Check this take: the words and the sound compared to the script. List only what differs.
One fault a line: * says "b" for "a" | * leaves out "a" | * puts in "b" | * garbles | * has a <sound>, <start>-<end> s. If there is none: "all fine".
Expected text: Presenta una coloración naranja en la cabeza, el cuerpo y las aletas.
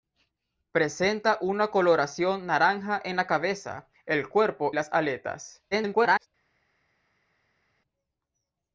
* leaves out "y"
* garbles